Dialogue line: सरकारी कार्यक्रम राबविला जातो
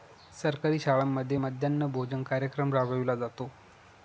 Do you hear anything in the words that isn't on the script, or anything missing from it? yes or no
yes